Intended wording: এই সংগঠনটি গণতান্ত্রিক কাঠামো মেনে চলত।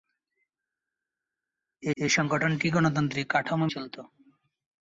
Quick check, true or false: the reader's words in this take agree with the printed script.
false